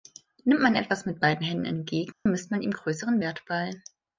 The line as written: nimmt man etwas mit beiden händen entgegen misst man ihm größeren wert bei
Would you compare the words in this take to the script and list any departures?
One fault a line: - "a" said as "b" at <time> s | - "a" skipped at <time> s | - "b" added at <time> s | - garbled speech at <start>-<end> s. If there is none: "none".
none